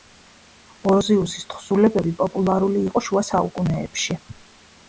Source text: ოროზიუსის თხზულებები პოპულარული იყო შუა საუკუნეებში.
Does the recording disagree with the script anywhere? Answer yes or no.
no